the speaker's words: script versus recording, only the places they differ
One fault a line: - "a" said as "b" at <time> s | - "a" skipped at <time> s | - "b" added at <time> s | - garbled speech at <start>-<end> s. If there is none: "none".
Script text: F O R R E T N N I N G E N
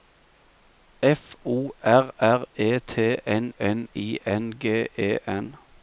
none